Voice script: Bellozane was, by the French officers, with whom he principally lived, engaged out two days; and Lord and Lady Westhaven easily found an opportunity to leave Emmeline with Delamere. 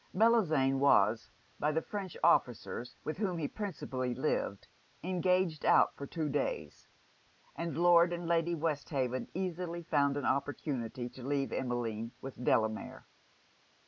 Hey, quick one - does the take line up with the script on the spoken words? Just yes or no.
no